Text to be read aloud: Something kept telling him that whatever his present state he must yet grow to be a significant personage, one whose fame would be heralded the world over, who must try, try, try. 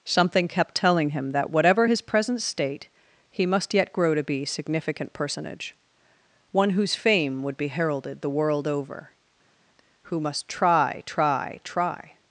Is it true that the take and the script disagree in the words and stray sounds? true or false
true